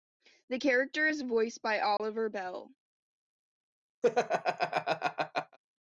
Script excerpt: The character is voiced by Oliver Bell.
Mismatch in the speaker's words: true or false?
false